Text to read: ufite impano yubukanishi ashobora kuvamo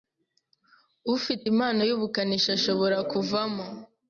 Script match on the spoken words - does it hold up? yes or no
yes